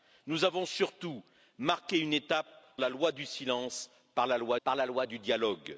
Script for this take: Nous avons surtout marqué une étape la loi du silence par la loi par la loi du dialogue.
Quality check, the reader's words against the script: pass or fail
pass